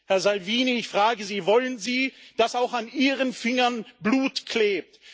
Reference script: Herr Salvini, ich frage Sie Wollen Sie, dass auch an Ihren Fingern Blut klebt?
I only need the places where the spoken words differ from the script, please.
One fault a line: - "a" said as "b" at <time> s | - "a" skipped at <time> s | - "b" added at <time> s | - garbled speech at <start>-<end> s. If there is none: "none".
none